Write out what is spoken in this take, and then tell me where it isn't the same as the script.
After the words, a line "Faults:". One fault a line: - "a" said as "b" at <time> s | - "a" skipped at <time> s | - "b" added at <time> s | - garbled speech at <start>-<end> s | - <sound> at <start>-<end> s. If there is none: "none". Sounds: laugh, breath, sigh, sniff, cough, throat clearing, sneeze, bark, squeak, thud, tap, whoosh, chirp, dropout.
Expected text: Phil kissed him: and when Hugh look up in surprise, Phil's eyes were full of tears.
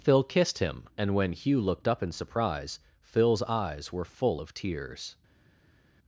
Phil kissed him: and when Hugh looked up in surprise, Phil's eyes were full of tears.
Faults:
- "look" said as "looked" at 1.6 s